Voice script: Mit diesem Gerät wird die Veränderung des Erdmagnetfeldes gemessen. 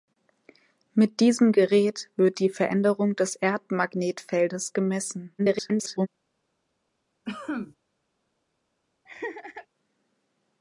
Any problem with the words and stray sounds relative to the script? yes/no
yes